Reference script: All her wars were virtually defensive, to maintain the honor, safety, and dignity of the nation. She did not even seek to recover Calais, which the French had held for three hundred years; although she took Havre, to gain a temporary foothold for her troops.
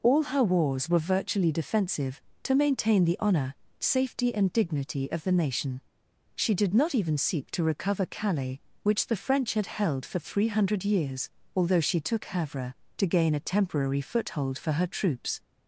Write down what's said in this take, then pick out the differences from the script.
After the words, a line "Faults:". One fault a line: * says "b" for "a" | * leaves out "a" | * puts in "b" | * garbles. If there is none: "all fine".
All her wars were virtually defensive, to maintain the honor, safety, and dignity of the nation. She did not even seek to recover Calais, which the French had held for three hundred years; although she took Havre, to gain a temporary foothold for her troops.
Faults:
all fine